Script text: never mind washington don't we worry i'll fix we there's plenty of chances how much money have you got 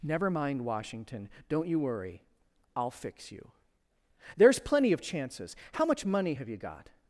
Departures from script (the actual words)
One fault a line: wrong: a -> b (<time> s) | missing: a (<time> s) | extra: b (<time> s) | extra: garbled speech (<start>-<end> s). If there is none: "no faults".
wrong: we -> you (1.7 s)
wrong: we -> you (3.3 s)